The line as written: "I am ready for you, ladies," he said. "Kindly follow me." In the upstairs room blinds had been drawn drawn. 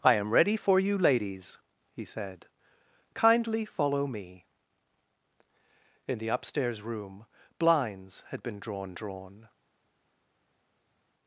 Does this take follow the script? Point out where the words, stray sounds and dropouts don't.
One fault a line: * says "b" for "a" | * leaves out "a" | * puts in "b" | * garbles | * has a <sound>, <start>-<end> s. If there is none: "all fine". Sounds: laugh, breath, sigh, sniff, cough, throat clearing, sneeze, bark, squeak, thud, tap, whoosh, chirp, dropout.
all fine